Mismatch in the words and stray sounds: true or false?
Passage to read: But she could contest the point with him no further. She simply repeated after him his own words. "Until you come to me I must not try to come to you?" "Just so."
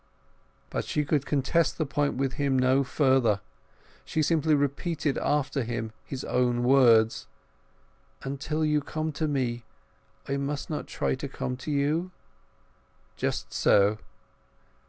false